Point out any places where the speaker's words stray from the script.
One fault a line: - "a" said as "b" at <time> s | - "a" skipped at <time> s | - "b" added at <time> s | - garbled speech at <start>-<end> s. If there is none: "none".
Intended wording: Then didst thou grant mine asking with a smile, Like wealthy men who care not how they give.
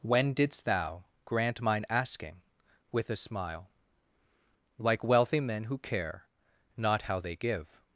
- "Then" said as "When" at 0.0 s